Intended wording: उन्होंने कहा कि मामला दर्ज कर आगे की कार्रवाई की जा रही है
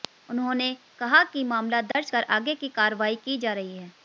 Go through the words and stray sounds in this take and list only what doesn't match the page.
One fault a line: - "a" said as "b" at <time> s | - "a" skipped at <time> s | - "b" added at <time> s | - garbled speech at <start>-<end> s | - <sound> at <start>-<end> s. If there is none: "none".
- dropout at 1.9-1.9 s